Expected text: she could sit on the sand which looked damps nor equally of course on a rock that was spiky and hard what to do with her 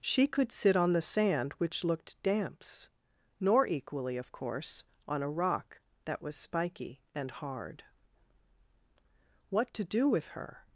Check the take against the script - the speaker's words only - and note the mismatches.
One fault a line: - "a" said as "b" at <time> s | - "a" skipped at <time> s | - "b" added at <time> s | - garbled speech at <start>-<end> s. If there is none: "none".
none